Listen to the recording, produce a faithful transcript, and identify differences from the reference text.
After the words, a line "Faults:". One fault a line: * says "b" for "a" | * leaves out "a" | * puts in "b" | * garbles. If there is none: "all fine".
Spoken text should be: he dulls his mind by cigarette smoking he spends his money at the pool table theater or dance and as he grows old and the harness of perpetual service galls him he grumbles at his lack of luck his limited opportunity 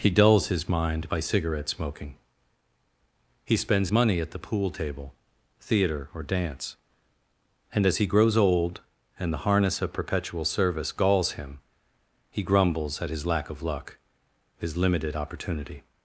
he dulls his mind by cigarette smoking he spends money at the pool table theater or dance and as he grows old and the harness of perpetual service galls him he grumbles at his lack of luck his limited opportunity
Faults:
* leaves out "his"